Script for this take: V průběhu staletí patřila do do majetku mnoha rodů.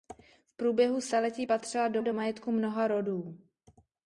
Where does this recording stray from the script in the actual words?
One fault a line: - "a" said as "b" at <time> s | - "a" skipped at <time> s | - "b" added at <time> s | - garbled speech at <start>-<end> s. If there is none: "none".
none